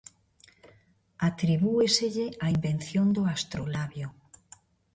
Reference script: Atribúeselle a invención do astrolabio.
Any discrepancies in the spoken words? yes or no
no